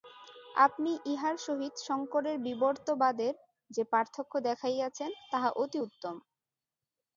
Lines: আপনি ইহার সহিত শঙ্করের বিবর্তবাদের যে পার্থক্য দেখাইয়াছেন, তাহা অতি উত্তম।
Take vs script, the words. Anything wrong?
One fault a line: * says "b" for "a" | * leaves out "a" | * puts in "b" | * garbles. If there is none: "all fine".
all fine